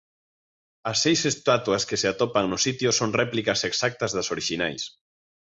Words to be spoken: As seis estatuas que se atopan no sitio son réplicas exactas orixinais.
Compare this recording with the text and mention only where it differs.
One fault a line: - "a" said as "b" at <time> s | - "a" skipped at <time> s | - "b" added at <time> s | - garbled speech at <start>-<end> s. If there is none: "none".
- "das" added at 4.2 s